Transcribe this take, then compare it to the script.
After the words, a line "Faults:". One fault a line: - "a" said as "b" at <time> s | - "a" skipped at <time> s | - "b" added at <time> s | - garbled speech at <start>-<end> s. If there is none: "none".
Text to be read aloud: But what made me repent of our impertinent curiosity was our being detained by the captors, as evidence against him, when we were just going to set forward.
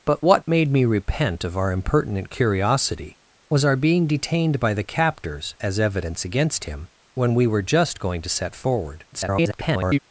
But what made me repent of our impertinent curiosity was our being detained by the captors, as evidence against him, when we were just going to set forward. [garbled]
Faults:
- garbled speech at 9.1-10.0 s